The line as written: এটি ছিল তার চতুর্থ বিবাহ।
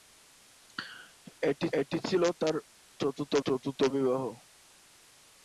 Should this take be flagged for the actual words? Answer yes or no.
yes